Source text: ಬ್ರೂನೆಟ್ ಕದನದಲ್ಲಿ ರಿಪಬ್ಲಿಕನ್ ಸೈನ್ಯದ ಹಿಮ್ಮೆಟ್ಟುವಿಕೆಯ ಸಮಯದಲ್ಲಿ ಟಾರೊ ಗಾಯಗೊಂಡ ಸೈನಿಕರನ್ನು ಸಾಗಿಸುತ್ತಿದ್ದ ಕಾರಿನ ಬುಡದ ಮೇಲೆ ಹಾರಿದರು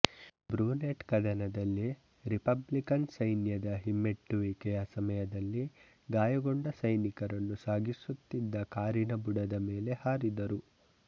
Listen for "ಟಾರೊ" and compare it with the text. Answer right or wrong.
wrong